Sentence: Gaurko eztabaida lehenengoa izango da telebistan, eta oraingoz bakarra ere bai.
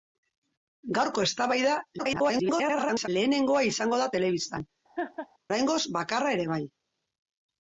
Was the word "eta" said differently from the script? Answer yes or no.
yes